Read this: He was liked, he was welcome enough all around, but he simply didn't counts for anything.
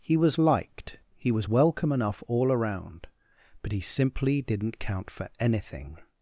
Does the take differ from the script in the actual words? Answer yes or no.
yes